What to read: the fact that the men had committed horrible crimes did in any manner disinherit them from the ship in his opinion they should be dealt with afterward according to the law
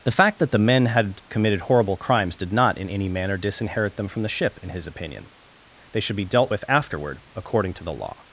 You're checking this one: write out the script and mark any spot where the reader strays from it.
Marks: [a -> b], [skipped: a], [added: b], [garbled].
the fact that the men had committed horrible crimes did [added: not] in any manner disinherit them from the ship in his opinion they should be dealt with afterward according to the law